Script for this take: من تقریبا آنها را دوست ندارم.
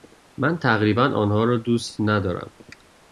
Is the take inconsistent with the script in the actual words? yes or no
no